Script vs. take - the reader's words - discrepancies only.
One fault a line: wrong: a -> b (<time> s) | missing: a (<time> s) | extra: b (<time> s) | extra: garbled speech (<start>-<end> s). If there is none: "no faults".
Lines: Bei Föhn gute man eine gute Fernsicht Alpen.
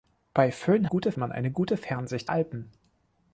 no faults